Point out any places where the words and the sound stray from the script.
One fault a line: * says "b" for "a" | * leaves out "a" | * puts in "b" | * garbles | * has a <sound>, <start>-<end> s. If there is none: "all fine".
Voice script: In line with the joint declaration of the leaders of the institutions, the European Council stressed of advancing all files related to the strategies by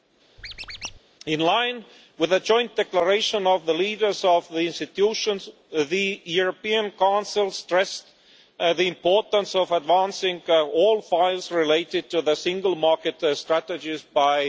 * has a squeak, 0.4-1.0 s
* puts in "the importance"
* puts in "single market"